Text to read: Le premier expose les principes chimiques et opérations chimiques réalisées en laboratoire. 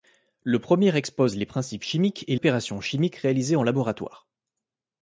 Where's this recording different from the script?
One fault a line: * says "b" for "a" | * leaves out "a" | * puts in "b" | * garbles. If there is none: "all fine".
all fine